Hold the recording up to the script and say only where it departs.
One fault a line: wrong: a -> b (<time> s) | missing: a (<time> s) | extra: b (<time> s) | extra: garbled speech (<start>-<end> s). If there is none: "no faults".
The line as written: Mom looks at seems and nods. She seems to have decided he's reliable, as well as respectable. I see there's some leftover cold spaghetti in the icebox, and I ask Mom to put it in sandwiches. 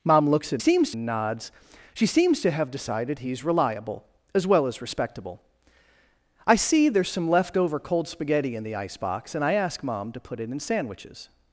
no faults